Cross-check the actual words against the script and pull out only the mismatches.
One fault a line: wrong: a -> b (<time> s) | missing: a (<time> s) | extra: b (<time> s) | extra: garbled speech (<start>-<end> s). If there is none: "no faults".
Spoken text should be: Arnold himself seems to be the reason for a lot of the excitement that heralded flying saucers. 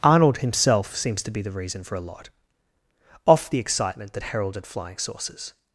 wrong: of -> off (3.3 s)